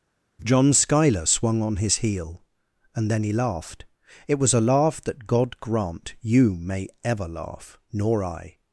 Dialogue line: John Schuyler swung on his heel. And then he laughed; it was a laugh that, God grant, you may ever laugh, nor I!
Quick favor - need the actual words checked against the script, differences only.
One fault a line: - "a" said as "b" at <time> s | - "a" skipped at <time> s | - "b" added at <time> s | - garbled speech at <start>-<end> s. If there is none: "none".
none